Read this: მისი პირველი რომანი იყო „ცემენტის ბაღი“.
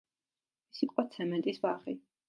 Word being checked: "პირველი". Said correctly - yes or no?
no